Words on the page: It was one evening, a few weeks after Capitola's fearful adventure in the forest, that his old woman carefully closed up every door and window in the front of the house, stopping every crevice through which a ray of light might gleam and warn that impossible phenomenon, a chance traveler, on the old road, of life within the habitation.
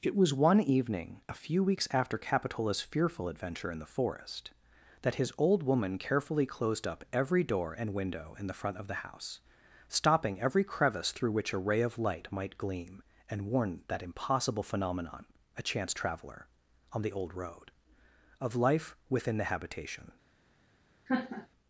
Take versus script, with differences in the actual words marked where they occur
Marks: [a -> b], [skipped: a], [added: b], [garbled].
It was one evening, a few weeks after Capitola's fearful adventure in the forest, that his old woman carefully closed up every door and window in the front of the house, stopping every crevice through which a ray of light might gleam and warn that impossible phenomenon, a chance traveler, on the old road, of life within the habitation.